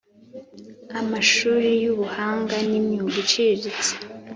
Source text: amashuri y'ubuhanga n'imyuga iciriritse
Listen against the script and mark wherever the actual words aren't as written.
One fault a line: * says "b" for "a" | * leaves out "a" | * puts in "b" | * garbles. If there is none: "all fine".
all fine